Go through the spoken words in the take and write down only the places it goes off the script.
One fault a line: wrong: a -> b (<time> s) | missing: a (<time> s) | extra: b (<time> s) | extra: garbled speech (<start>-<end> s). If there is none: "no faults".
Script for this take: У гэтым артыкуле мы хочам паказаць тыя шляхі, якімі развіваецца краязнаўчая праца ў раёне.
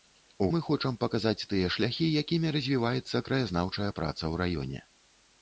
missing: гэтым артыкуле (0.5 s)